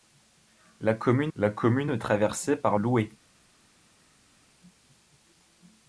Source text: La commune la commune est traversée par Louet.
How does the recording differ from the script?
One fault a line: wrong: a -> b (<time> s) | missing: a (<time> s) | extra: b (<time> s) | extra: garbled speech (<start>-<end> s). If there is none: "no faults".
no faults